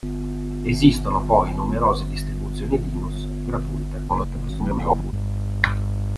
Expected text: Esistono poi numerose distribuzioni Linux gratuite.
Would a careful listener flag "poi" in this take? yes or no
no